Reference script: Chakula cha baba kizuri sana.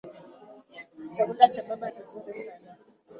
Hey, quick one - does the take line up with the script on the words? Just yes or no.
yes